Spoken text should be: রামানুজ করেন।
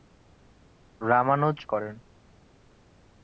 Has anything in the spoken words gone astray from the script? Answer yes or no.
no